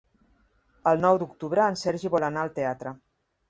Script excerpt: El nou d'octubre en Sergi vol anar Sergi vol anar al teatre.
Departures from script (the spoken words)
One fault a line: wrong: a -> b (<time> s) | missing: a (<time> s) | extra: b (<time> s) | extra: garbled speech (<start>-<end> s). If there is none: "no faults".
missing: Sergi vol anar (2.5 s)